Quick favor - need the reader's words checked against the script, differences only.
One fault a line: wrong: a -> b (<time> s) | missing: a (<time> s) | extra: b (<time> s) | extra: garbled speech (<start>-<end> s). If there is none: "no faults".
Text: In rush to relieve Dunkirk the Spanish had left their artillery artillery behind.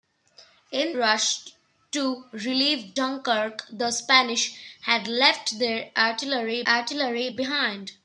no faults